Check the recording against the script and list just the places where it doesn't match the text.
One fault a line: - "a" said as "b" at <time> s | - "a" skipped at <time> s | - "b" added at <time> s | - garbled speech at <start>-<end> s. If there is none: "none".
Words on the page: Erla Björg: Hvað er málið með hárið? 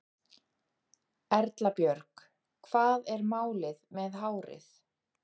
none